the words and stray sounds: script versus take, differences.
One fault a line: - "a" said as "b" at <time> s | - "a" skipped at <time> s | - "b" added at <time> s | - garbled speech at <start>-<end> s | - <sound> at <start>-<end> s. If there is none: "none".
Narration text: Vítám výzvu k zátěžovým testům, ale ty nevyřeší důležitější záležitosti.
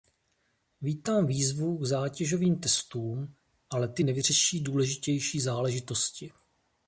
none